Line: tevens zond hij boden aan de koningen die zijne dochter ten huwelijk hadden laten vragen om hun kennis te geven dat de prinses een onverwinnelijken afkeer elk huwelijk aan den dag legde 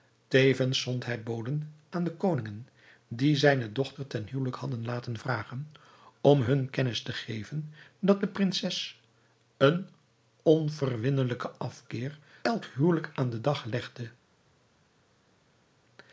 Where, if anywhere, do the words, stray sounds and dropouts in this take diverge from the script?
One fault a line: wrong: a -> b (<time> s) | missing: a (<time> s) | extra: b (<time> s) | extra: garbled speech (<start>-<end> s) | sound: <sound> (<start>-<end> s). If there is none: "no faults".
no faults